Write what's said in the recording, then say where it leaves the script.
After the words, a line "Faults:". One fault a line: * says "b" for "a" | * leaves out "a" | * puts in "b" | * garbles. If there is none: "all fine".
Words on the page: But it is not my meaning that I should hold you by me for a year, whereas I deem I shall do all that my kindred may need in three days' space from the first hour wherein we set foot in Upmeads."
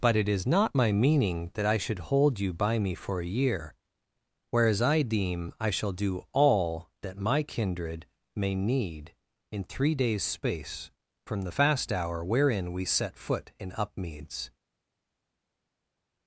But it is not my meaning that I should hold you by me for a year, whereas I deem I shall do all that my kindred may need in three days' space from the fast hour wherein we set foot in Upmeads."
Faults:
* says "fast" for "first"